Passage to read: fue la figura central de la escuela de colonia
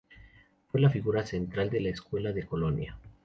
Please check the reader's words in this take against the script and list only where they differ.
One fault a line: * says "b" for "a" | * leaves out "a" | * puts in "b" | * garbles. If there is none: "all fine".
all fine